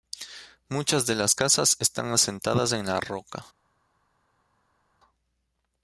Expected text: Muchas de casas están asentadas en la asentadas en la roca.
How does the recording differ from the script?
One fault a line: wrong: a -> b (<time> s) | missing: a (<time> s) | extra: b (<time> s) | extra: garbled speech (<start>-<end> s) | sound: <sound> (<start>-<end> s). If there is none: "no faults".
extra: las (1.1 s)
missing: asentadas en la (3.0 s)